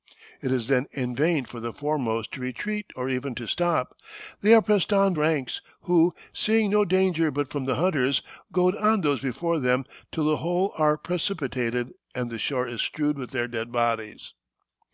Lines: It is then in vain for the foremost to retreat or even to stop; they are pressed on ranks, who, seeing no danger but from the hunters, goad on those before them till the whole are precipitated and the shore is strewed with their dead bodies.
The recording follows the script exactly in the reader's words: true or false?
true